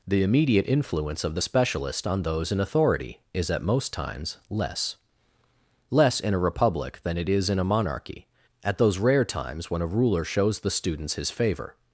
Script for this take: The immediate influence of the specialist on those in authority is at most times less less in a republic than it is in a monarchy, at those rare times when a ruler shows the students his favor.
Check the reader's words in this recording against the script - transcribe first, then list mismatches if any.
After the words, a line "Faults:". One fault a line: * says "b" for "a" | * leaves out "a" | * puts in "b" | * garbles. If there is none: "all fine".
The immediate influence of the specialist on those in authority is at most times less less in a republic than it is in a monarchy, at those rare times when a ruler shows the students his favor.
Faults:
all fine